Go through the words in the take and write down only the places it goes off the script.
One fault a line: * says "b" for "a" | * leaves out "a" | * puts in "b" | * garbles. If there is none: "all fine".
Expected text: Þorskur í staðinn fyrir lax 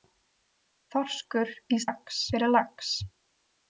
* says "lax" for "staðinn"